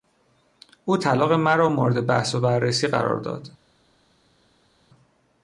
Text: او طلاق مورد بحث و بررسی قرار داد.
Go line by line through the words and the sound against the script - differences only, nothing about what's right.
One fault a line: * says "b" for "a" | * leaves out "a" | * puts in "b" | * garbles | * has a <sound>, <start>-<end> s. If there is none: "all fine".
* puts in "مرا"